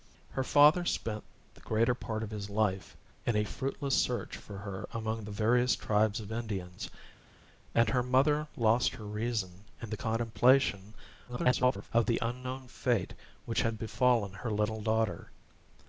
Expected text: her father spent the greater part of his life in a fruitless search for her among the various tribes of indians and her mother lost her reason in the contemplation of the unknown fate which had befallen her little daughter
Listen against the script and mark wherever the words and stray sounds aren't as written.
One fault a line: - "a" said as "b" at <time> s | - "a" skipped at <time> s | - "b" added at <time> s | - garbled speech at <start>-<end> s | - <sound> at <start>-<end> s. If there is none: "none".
- garbled speech at 11.3-11.9 s